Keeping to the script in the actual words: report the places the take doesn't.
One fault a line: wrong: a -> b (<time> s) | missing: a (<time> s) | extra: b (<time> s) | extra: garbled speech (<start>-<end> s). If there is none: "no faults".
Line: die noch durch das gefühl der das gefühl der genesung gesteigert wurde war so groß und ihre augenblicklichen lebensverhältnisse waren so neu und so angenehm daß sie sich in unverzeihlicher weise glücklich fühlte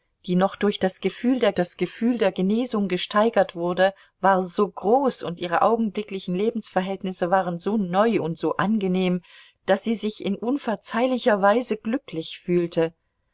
no faults